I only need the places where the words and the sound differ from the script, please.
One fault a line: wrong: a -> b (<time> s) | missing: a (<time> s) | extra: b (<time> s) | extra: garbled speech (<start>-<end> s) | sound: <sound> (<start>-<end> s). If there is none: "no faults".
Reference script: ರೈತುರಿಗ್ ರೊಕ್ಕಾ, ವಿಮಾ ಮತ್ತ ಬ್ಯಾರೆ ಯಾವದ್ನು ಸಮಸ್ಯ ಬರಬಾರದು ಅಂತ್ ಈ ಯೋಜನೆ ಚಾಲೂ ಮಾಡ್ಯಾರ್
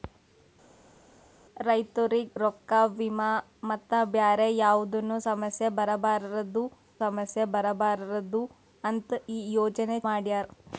extra: ಸಮಸ್ಯ ಬರಬಾರದು (7.0 s)
missing: ಚಾಲೂ (10.0 s)